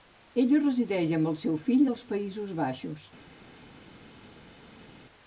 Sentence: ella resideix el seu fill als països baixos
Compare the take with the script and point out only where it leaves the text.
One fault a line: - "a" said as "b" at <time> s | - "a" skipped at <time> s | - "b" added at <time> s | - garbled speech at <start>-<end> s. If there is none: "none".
- "amb" added at 1.2 s